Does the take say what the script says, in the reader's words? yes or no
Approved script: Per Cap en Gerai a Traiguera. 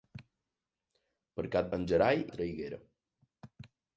yes